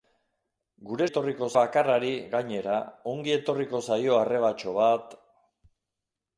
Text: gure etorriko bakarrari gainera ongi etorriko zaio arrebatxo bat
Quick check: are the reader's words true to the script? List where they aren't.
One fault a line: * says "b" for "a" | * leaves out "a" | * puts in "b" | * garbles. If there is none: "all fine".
all fine